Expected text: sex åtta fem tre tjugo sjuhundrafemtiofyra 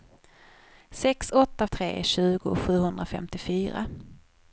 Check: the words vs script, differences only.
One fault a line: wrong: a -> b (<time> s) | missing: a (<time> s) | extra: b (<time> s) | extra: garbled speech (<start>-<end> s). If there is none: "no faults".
missing: fem (1.7 s)